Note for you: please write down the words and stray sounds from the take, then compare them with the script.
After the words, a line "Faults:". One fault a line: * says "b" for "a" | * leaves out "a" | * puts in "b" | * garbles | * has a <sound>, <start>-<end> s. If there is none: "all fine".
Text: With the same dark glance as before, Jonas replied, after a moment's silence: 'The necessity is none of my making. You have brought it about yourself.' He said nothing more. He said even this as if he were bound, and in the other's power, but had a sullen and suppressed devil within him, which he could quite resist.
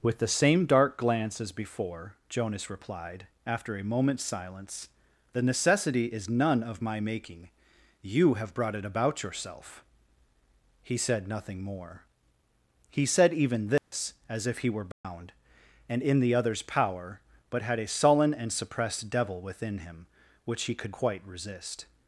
With the same dark glance as before, Jonas replied, after a moment's silence: 'The necessity is none of my making. You have brought it about yourself.' He said nothing more. He said even this as if he were bound, and in the other's power, but had a sullen and suppressed devil within him, which he could quite resist.
Faults:
* has a dropout, 13.8-13.9 s
* has a dropout, 14.9-15.0 s